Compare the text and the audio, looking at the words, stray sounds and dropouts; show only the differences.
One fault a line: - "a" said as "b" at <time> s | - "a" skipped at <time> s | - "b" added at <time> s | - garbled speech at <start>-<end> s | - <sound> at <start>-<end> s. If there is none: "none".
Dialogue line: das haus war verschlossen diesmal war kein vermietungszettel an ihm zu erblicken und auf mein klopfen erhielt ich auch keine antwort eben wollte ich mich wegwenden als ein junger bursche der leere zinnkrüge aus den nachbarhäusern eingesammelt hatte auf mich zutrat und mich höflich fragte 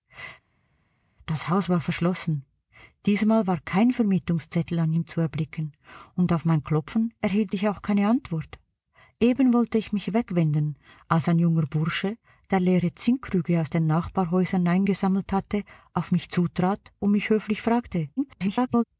- garbled speech at 18.2-18.8 s